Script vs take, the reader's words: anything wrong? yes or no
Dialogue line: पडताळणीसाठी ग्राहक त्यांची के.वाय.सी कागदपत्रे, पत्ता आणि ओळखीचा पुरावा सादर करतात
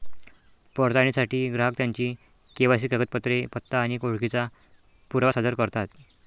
no